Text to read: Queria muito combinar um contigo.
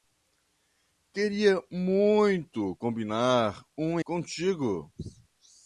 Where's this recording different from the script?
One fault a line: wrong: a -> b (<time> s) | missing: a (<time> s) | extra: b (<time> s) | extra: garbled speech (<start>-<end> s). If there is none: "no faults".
no faults